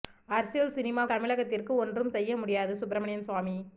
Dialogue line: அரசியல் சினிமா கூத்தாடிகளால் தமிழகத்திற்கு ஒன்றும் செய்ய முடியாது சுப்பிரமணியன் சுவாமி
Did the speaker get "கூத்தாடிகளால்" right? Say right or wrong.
wrong